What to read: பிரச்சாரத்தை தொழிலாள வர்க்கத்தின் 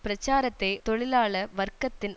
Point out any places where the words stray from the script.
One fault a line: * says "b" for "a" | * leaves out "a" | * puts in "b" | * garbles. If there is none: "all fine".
all fine